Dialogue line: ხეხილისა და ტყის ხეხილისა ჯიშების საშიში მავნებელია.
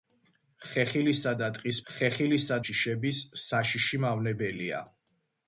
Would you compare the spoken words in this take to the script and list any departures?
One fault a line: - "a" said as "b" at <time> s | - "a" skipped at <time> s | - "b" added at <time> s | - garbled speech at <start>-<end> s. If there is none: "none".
none